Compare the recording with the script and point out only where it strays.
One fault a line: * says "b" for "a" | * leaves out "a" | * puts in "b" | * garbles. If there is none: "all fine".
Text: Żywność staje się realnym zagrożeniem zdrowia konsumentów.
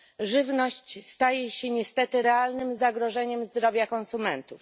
* puts in "niestety"